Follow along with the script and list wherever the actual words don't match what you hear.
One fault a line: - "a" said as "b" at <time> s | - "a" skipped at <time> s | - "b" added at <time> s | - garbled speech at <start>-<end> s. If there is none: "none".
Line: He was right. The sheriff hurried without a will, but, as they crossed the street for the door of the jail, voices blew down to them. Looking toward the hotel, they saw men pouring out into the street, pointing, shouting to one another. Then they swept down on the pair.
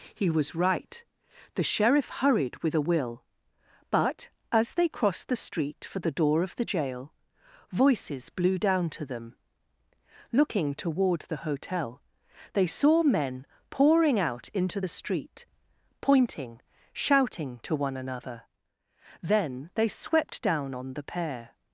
- "without" said as "with" at 2.6 s